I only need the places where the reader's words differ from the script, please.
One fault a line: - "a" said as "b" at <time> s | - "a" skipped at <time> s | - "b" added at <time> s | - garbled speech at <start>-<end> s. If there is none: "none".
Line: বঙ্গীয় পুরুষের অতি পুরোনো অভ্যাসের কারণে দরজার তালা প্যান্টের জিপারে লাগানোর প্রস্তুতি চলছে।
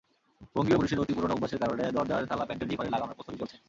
none